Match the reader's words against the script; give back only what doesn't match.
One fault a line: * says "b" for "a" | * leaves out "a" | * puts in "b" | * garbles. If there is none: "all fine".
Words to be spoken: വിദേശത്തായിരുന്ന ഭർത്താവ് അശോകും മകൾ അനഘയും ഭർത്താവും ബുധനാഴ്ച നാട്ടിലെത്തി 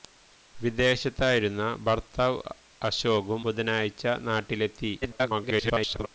* leaves out "മകൾ അനഘയും ഭർത്താവും"
* garbles